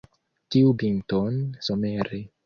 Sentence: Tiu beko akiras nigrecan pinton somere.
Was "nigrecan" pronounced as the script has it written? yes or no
no